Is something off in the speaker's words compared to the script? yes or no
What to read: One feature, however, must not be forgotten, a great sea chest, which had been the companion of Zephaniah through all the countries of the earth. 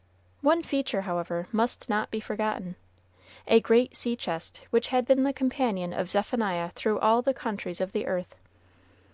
no